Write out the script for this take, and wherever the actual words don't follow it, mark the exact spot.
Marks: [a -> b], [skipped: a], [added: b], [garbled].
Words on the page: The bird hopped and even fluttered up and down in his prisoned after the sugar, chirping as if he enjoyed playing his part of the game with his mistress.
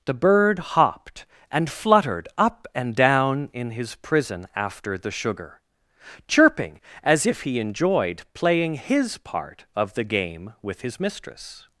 The bird hopped and [skipped: even] fluttered up and down in his [prisoned -> prison] after the sugar, chirping as if he enjoyed playing his part of the game with his mistress.